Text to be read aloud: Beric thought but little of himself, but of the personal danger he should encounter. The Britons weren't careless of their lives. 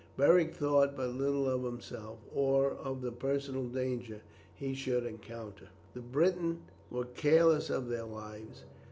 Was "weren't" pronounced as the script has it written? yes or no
no